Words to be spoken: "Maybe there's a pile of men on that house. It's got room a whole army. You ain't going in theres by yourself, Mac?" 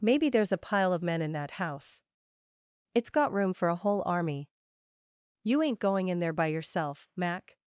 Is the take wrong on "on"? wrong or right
wrong